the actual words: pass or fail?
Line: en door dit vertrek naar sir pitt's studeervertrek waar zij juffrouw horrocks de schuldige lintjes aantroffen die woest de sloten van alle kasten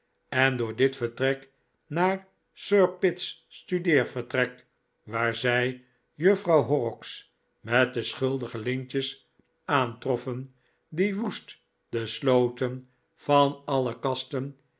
fail